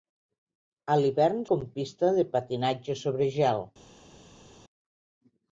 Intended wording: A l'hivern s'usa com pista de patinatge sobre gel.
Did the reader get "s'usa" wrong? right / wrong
wrong